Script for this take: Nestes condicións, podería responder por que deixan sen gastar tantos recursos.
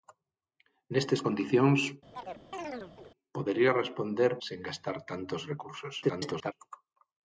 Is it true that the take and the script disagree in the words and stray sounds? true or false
true